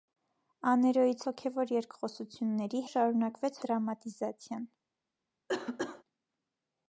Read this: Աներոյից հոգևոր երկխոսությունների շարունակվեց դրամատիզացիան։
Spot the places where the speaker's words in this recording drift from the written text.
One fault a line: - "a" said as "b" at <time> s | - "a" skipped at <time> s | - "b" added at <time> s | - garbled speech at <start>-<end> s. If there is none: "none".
none